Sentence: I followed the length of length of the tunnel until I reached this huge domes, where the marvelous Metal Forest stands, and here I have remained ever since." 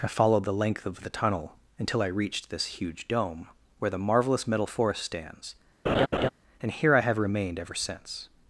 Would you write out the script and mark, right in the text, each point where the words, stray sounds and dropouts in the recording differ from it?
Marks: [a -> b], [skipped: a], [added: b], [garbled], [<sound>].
I followed the length of [skipped: length of] the tunnel until I reached this huge [domes, -> dome] where the marvelous Metal Forest stands, [laugh] and here I have remained ever since."